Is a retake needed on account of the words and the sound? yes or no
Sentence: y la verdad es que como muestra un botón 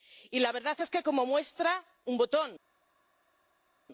no